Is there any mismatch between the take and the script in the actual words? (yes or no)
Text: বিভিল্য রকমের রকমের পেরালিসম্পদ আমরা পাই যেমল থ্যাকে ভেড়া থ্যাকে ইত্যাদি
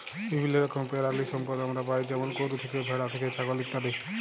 yes